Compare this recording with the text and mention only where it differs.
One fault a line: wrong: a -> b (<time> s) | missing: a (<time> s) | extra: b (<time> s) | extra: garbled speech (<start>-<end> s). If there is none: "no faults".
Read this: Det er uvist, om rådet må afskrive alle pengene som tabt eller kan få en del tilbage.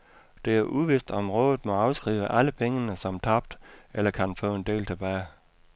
no faults